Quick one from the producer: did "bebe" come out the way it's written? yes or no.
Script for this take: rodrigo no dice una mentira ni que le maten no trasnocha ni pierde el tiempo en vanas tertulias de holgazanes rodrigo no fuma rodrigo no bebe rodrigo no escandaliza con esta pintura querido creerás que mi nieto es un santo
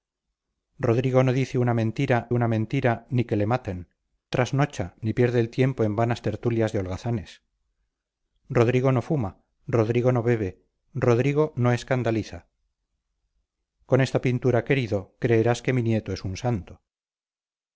yes